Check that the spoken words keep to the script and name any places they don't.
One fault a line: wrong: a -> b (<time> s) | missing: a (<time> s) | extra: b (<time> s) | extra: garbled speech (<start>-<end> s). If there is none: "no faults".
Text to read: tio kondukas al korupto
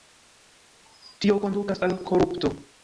no faults